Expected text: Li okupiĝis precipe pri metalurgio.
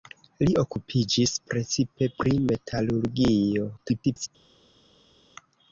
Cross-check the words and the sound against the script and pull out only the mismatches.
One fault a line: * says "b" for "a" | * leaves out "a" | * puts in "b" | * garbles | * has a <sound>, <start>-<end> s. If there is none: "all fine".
* garbles